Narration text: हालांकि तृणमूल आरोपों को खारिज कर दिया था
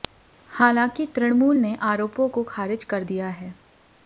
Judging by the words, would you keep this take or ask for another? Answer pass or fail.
fail